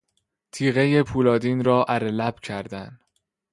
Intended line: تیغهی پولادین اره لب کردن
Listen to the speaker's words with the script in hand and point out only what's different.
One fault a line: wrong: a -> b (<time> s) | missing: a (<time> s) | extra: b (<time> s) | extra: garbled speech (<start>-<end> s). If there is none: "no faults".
extra: را (1.6 s)